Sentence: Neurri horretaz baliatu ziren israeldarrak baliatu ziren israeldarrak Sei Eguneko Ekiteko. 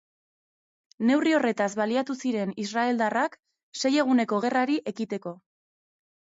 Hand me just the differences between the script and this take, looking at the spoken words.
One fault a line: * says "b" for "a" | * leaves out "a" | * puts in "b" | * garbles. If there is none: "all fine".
* leaves out "baliatu ziren israeldarrak"
* puts in "Gerrari"